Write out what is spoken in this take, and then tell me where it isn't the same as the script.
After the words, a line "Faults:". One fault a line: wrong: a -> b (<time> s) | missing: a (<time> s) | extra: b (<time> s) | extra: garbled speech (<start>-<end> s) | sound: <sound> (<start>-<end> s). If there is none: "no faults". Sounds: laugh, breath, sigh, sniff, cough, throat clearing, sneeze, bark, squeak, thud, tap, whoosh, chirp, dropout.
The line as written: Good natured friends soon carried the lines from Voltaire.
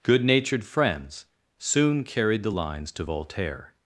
Good natured friends soon carried the lines to Voltaire.
Faults:
wrong: from -> to (2.9 s)